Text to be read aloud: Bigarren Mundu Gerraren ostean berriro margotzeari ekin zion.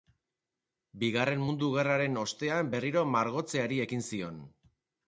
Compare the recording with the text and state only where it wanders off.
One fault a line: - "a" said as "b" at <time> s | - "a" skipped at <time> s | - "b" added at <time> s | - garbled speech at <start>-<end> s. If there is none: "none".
none